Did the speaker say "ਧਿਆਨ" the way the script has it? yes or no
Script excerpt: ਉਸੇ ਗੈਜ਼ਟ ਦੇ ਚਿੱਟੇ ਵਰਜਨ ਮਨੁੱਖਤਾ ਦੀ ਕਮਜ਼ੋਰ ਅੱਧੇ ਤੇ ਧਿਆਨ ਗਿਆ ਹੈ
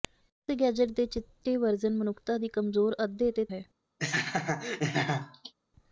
no